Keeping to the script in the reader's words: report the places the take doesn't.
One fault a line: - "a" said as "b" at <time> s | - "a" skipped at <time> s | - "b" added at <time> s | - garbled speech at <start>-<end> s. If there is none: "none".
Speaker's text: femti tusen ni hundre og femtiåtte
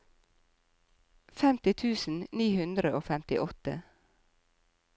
none